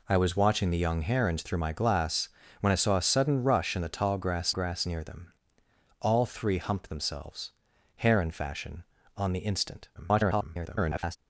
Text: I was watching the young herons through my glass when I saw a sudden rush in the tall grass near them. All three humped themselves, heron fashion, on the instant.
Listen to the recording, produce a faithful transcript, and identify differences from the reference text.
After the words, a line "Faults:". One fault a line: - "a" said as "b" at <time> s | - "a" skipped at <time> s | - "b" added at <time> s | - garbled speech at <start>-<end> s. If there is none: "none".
I was watching the young herons through my glass when I saw a sudden rush in the tall grass grass near them. All three humped themselves, heron fashion, on the instant. [garbled]
Faults:
- "grass" added at 4.5 s
- garbled speech at 9.9-11.2 s